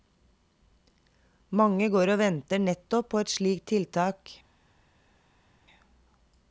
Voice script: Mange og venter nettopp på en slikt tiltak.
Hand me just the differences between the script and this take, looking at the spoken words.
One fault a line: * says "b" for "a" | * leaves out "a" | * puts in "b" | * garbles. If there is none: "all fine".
* puts in "går"
* says "et" for "en"